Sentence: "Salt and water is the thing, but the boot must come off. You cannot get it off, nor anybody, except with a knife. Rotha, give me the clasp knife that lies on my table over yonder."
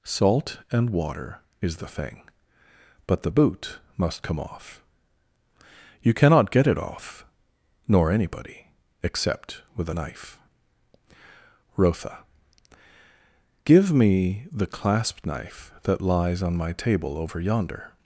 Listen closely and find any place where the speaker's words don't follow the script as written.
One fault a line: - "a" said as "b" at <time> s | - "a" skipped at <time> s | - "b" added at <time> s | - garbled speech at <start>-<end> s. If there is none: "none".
none